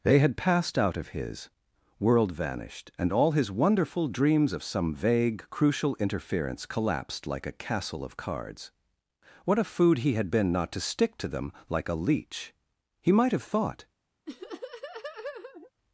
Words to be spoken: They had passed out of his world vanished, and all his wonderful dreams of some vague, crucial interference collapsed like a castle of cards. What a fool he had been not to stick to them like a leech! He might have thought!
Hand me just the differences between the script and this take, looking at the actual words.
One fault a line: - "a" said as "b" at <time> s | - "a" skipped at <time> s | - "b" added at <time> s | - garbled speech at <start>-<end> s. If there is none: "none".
- "fool" said as "food" at 9.6 s